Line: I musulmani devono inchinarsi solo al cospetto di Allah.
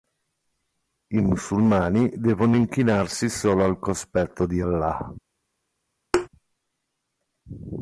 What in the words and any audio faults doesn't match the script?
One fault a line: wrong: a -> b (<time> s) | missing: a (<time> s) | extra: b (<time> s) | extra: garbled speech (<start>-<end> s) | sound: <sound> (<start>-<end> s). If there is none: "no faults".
sound: thud (6.1-6.3 s)